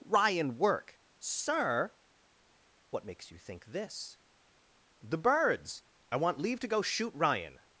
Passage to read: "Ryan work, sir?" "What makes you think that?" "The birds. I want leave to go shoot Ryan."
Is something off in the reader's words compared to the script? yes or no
yes